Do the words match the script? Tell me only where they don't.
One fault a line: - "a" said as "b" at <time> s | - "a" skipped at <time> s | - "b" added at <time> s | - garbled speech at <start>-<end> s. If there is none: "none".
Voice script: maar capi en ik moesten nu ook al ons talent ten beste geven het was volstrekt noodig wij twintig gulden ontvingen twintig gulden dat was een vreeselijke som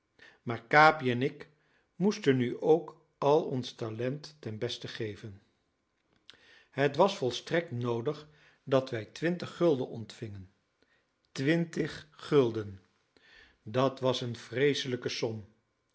- "dat" added at 8.6 s